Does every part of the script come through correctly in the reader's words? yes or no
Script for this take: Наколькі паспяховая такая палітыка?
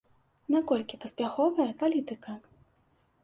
no